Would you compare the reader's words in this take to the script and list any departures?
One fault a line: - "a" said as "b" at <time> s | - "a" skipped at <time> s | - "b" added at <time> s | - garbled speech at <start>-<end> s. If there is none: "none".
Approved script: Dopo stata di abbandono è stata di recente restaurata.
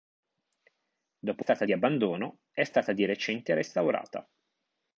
none